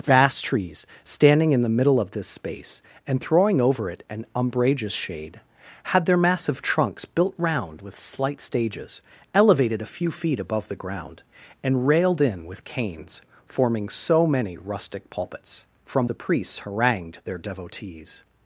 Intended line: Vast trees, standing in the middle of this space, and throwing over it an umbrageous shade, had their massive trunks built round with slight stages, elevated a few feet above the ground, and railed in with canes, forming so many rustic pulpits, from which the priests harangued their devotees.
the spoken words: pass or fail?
fail